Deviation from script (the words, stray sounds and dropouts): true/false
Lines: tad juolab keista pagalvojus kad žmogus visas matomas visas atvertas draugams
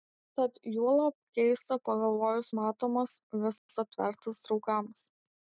true